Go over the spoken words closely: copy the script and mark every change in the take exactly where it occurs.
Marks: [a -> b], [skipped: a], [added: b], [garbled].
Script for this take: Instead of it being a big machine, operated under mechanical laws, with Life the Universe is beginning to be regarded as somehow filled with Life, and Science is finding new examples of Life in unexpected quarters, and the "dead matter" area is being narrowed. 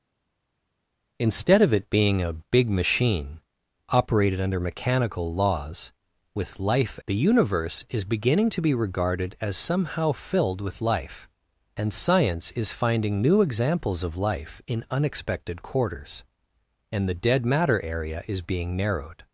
Instead of it being a big machine, operated under mechanical laws, with Life the Universe is beginning to be regarded as somehow filled with Life, and Science is finding new examples of Life in unexpected quarters, and the "dead matter" area is being narrowed.